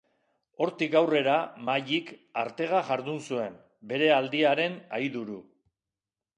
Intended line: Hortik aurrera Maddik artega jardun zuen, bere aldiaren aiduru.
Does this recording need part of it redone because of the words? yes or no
no